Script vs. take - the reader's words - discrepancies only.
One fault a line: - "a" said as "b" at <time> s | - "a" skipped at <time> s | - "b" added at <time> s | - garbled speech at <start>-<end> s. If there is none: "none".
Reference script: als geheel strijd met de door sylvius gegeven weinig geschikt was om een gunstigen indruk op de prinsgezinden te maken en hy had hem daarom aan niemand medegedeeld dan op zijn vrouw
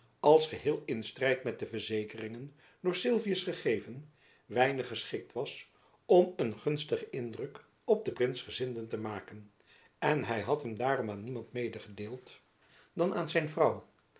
- "in" added at 0.8 s
- "verzekeringen" added at 1.6 s
- "op" said as "aan" at 13.1 s